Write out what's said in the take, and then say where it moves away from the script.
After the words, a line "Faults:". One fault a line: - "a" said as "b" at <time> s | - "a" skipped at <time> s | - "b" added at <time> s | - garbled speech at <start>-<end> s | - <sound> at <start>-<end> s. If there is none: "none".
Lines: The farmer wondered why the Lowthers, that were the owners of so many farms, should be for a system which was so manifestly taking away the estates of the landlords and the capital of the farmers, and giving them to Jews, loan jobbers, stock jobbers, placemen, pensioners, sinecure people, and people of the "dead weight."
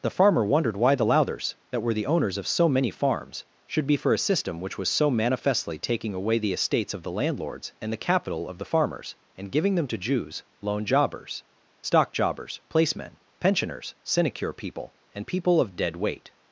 The farmer wondered why the Lowthers, that were the owners of so many farms, should be for a system which was so manifestly taking away the estates of the landlords and the capital of the farmers, and giving them to Jews, loan jobbers, stock jobbers, placemen, pensioners, sinecure people, and people of "dead weight."
Faults:
- "the" skipped at 15.7 s